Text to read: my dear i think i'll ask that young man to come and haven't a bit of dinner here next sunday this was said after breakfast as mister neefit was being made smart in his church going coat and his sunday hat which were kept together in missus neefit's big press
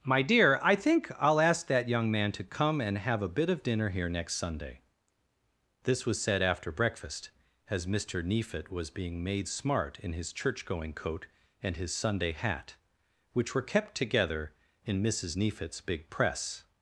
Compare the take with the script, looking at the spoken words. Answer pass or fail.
fail